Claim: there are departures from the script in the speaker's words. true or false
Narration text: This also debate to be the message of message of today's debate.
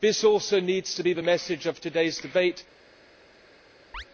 true